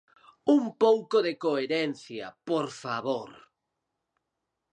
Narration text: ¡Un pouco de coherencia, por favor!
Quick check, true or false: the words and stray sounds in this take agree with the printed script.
true